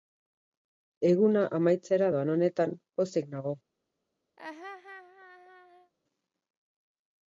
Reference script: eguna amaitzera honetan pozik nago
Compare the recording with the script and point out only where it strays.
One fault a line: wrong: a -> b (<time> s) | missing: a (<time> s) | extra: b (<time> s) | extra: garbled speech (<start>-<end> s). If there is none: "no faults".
extra: doan (2.2 s)